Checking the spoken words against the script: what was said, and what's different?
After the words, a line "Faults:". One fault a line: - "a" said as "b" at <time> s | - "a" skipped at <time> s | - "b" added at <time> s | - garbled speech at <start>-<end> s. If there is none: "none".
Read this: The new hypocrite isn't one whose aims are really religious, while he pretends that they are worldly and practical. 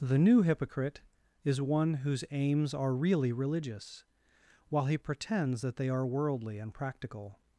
The new hypocrite is one whose aims are really religious, while he pretends that they are worldly and practical.
Faults:
- "isn't" said as "is" at 1.4 s